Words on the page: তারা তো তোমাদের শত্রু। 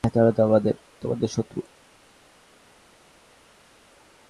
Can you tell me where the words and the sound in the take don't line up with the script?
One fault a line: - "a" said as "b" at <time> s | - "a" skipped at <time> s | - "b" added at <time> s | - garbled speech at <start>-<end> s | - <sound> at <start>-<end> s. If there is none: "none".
none